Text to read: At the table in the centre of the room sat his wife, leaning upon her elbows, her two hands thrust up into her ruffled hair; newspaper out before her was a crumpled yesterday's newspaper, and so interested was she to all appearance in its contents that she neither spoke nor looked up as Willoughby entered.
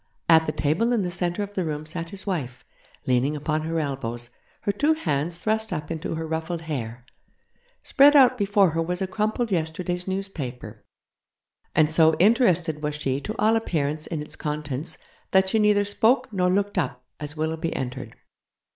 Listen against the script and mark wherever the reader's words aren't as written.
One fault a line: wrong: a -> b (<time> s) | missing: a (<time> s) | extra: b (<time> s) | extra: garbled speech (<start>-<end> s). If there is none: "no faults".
wrong: newspaper -> spread (7.8 s)